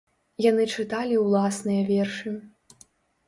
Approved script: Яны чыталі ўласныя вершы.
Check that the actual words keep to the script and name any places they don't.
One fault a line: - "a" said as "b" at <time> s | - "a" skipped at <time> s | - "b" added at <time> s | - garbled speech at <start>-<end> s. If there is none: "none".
none